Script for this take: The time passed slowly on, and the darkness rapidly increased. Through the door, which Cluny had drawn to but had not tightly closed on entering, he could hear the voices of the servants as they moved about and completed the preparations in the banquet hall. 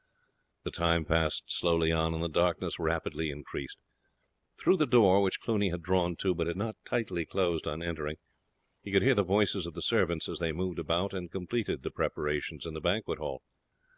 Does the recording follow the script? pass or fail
pass